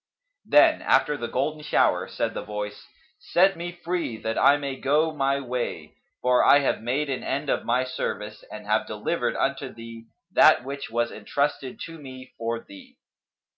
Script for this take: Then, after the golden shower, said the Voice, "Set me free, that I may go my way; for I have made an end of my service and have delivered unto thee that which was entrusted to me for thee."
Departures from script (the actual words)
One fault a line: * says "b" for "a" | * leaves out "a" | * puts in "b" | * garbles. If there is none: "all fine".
all fine